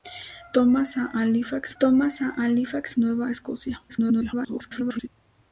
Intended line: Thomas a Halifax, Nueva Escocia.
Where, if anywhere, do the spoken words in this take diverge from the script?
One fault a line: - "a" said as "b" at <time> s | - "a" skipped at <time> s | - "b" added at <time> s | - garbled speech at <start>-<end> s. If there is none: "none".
- "thomas a Halifax" added at 1.8 s
- garbled speech at 3.9-5.1 s